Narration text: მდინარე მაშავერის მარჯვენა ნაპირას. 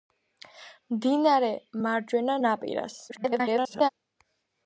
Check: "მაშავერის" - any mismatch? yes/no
yes